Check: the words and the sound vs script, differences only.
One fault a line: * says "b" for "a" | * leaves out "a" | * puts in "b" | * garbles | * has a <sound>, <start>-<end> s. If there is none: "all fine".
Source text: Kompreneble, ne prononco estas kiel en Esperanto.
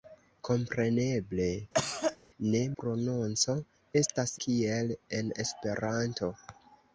* has a cough, 1.7-2.2 s